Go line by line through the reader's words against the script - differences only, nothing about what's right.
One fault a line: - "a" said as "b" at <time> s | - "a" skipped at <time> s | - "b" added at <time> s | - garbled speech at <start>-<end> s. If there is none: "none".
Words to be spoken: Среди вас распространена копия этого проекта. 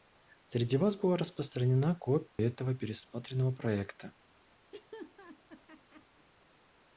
- "была" added at 0.9 s
- "пересмотренного" added at 2.7 s